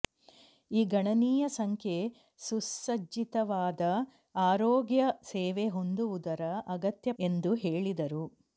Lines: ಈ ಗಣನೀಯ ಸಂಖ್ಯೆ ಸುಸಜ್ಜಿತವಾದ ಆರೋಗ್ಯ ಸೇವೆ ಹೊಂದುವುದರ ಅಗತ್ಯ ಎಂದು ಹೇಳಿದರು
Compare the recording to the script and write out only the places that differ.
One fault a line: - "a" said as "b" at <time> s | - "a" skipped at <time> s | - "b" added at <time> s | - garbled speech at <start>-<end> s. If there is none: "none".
none